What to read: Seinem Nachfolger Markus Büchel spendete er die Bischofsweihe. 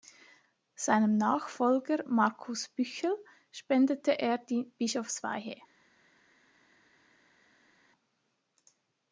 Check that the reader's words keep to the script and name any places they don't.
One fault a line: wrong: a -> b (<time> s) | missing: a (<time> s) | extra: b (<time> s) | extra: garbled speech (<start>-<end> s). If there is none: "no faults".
no faults